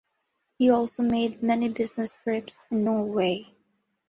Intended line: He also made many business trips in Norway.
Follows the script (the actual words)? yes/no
yes